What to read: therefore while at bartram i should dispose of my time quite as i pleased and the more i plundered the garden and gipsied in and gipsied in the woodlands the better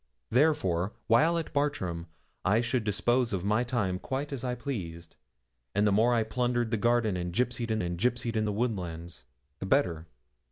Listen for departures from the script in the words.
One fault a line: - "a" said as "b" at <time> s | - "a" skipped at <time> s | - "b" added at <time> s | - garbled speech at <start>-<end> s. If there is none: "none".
none